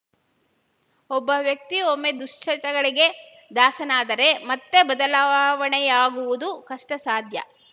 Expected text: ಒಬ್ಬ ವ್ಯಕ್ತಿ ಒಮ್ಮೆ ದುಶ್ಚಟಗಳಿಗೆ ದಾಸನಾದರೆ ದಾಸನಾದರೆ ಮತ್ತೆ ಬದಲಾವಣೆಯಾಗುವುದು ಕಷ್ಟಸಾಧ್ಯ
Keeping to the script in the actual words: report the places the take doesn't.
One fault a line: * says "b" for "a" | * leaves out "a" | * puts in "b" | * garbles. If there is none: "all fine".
* leaves out "ದಾಸನಾದರೆ"